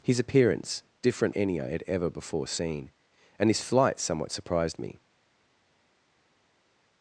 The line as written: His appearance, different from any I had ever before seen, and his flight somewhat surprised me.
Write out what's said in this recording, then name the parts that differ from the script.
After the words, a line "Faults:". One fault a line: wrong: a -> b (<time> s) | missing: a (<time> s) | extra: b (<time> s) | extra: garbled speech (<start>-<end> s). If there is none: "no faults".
His appearance, different any I had ever before seen, and his flight somewhat surprised me.
Faults:
missing: from (1.4 s)